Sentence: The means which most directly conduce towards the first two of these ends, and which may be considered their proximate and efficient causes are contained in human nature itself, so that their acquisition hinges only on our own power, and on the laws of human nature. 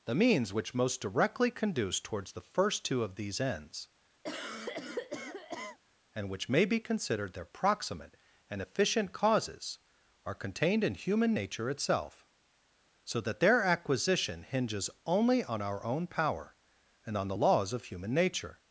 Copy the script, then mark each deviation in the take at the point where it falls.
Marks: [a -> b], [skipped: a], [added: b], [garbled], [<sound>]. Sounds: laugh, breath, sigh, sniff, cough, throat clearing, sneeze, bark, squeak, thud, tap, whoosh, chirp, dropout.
The means which most directly conduce towards the first two of these ends, [cough] and which may be considered their proximate and efficient causes are contained in human nature itself, so that their acquisition hinges only on our own power, and on the laws of human nature.